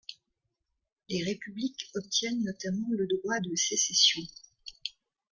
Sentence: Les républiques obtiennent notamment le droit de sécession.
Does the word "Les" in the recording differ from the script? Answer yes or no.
no